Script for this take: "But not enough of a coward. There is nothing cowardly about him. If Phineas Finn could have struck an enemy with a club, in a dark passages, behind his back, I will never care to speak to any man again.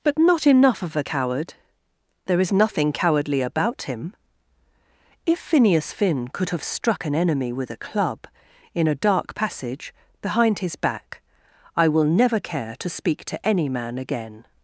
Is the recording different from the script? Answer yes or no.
yes